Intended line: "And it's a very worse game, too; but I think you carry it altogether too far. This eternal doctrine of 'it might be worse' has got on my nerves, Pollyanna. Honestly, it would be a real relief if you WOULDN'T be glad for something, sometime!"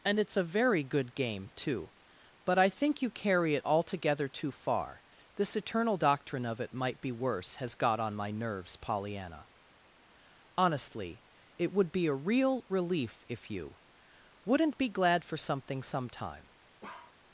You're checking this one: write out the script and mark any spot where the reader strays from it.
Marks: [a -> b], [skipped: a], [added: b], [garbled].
"And it's a very [worse -> good] game, too; but I think you carry it altogether too far. This eternal doctrine of 'it might be worse' has got on my nerves, Pollyanna. Honestly, it would be a real relief if you WOULDN'T be glad for something, sometime!"